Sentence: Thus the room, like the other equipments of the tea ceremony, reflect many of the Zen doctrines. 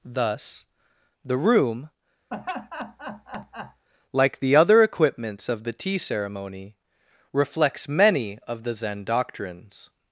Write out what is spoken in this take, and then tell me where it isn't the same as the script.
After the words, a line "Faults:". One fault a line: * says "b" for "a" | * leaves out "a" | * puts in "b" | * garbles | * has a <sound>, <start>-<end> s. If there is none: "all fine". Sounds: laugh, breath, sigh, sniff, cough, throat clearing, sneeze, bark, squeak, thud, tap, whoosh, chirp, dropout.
Thus the room, like the other equipments of the tea ceremony, reflects many of the Zen doctrines.
Faults:
* has a laugh, 2.3-3.9 s
* says "reflects" for "reflect"